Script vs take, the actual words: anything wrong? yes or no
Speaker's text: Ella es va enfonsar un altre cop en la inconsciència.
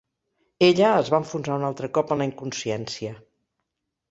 no